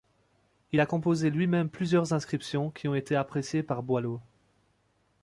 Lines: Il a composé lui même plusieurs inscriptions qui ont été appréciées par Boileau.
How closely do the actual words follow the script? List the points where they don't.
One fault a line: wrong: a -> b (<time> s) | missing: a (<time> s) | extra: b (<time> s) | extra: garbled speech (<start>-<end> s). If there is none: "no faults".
no faults